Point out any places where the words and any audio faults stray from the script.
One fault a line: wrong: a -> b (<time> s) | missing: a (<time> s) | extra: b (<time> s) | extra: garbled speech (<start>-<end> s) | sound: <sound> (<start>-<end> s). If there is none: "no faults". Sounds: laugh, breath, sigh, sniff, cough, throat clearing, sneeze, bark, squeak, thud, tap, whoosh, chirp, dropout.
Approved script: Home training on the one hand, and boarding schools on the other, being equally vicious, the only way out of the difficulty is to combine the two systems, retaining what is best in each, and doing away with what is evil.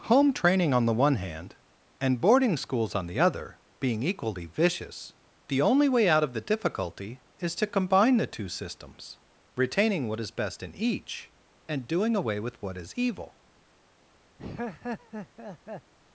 sound: laugh (14.4-15.9 s)